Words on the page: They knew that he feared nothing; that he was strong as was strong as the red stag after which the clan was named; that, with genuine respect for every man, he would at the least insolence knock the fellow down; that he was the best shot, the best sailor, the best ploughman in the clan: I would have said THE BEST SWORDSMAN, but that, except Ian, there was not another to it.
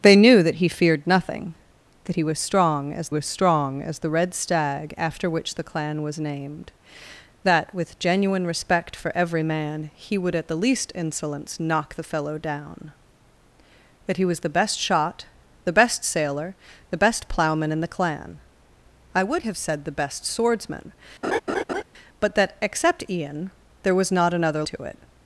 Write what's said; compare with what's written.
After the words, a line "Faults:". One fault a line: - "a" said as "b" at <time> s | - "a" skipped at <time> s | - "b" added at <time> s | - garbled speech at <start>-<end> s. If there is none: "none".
They knew that he feared nothing; that he was strong as was strong as the red stag after which the clan was named; that, with genuine respect for every man, he would at the least insolence knock the fellow down; that he was the best shot, the best sailor, the best ploughman in the clan: I would have said THE BEST SWORDSMAN, but that, except Ian, there was not another to it.
Faults:
none